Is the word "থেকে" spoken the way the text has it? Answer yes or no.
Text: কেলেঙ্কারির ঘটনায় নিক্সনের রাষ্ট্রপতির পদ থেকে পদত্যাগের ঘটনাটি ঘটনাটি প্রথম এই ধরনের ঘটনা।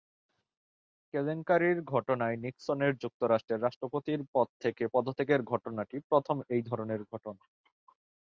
yes